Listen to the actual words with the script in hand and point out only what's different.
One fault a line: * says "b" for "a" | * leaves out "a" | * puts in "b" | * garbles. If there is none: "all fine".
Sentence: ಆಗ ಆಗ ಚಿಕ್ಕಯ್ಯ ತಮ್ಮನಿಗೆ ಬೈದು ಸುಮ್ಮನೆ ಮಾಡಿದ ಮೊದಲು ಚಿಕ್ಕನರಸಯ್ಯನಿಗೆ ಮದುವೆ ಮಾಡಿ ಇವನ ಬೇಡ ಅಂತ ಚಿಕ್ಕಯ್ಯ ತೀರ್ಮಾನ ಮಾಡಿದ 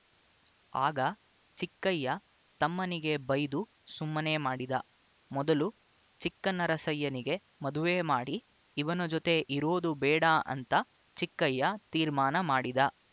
* leaves out "ಆಗ"
* puts in "ಜೊತೆ ಇರೋದು"